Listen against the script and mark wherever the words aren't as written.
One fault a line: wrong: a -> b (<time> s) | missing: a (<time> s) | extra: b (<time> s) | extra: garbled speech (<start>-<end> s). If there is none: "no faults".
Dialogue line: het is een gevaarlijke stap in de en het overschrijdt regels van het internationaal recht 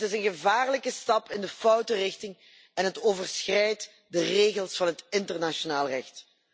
extra: foute richting (1.5 s)
extra: de (4.1 s)